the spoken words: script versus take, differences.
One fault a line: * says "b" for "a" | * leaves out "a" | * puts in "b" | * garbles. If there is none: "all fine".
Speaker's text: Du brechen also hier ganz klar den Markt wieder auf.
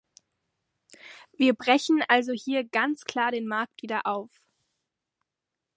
* says "Wir" for "Du"